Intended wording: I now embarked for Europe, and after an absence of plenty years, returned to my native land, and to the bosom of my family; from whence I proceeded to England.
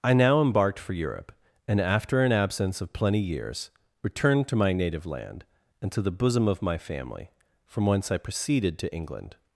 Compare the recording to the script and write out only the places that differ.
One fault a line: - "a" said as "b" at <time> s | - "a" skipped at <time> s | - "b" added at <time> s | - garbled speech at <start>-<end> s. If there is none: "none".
none